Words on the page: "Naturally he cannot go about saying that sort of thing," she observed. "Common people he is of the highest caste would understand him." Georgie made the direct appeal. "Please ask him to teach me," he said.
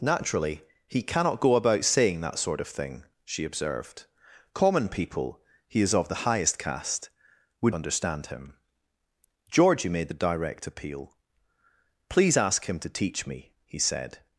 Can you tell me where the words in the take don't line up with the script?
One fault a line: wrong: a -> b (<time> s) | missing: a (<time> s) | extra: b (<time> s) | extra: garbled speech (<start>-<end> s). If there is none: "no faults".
no faults